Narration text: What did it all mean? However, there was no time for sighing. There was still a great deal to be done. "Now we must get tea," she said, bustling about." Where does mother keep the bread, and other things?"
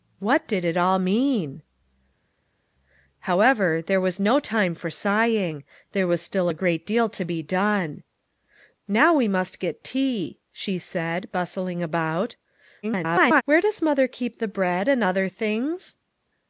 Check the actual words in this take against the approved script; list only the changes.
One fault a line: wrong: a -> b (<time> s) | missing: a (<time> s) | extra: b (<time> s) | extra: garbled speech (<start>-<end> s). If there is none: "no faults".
extra: garbled speech (12.8-13.4 s)